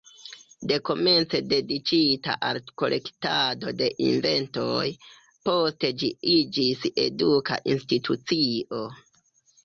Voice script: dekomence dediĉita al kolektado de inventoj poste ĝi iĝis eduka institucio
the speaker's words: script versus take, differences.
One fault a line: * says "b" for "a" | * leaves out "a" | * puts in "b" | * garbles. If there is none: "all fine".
all fine